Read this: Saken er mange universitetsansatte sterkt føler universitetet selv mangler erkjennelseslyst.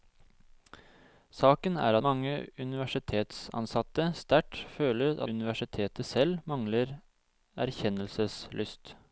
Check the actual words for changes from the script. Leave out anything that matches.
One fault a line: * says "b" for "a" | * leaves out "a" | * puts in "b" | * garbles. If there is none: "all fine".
all fine